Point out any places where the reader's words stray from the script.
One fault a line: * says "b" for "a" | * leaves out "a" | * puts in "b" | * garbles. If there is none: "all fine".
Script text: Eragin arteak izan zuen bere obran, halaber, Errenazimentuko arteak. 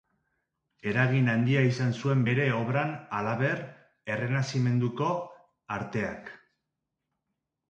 * says "handia" for "arteak"